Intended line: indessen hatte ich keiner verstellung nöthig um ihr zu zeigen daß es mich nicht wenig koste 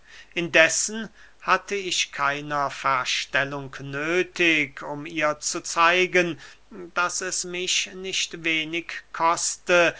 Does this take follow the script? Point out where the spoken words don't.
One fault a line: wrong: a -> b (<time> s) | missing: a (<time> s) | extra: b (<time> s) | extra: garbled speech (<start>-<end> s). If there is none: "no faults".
no faults